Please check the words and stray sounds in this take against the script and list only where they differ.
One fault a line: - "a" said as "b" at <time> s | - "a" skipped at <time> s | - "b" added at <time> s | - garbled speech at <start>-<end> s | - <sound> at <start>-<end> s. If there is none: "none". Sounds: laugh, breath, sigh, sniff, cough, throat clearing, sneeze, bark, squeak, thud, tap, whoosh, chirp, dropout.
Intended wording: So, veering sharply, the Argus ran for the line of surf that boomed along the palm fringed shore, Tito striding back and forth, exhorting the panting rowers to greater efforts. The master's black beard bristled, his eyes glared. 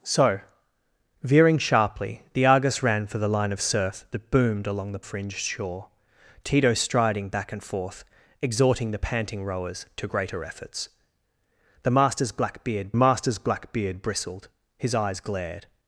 - "palm" skipped at 5.0 s
- "master's black beard" added at 13.0 s